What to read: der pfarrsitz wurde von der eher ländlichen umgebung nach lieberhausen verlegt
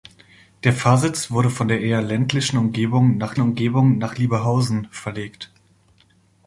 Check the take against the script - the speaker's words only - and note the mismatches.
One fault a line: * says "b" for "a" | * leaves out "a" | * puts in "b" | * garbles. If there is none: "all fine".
* puts in "umgebung nach"